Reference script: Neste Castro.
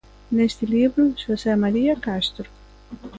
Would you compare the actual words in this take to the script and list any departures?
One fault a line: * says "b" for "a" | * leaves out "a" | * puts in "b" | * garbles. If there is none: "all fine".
* puts in "libro Xosé María"